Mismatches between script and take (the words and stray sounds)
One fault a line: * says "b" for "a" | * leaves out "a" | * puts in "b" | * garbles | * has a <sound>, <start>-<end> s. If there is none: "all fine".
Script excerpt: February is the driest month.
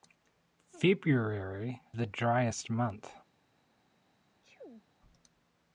* leaves out "is"
* has a sneeze, 4.4-4.9 s